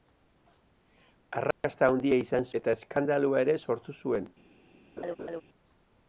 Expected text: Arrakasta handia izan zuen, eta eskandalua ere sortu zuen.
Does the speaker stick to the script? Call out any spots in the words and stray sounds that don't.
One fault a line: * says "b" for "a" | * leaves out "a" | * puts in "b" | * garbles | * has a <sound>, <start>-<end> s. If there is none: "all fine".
* has a dropout, 1.5-1.6 s
* leaves out "zuen"
* has a laugh, 5.0-5.4 s